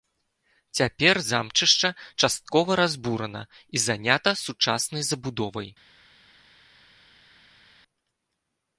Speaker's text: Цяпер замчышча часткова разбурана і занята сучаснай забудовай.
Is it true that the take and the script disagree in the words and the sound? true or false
false